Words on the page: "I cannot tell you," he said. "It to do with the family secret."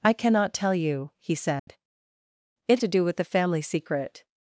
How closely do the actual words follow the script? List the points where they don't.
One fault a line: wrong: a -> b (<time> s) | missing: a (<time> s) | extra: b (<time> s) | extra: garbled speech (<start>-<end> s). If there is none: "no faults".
no faults